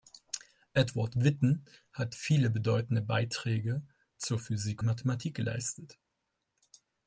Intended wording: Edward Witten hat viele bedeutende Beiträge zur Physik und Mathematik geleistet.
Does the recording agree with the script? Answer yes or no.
no